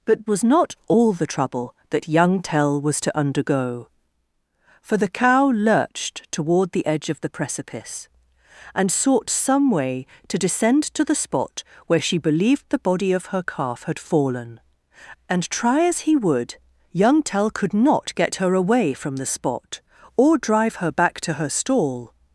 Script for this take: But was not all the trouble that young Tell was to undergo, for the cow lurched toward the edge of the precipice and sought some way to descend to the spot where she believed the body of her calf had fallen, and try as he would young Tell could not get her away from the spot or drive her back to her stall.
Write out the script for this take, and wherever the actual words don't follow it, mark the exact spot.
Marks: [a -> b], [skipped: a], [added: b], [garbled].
But was not all the trouble that young Tell was to undergo, for the cow lurched toward the edge of the precipice and sought some way to descend to the spot where she believed the body of her calf had fallen, and try as he would young Tell could not get her away from the spot or drive her back to her stall.